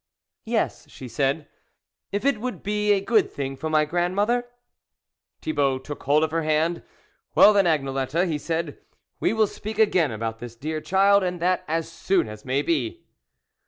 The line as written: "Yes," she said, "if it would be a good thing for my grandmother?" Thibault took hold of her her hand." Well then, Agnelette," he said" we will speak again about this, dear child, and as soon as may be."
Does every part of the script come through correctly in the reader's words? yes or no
no